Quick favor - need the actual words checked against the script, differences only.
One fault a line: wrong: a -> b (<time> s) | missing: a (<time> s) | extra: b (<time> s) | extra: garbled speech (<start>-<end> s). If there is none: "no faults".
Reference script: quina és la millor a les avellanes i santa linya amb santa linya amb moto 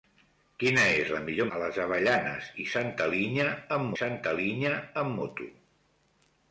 no faults